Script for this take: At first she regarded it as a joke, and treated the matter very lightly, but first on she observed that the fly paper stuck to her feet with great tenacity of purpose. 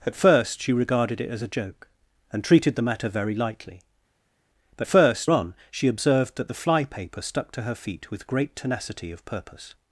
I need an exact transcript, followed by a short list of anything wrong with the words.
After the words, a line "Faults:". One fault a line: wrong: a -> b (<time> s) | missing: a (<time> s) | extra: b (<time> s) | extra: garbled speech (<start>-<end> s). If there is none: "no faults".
At first she regarded it as a joke, and treated the matter very lightly, but first on she observed that the fly paper stuck to her feet with great tenacity of purpose.
Faults:
no faults